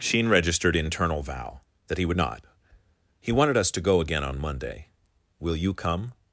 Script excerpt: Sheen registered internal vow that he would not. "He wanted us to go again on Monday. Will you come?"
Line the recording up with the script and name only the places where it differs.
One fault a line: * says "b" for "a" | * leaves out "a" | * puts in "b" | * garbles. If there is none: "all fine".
all fine